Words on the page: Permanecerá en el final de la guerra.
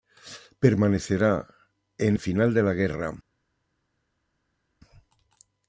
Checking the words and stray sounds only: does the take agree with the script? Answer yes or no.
yes